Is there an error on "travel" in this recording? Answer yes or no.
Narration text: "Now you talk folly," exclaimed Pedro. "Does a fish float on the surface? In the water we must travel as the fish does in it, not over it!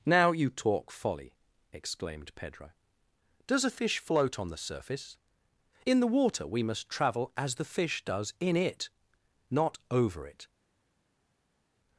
no